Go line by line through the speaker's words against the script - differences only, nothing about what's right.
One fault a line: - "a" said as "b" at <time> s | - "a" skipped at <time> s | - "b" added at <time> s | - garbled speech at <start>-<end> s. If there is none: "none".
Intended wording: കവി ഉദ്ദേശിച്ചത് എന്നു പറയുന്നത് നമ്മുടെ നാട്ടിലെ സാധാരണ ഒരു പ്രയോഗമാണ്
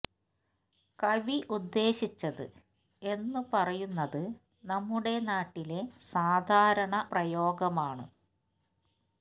- "ഒരു" skipped at 7.1 s